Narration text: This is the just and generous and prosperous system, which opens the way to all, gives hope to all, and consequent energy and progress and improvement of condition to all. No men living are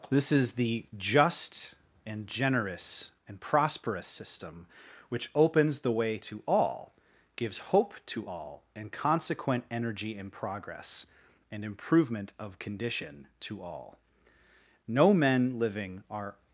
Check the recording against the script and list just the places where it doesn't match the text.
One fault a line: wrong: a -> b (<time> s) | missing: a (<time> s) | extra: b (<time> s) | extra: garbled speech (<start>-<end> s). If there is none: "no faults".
no faults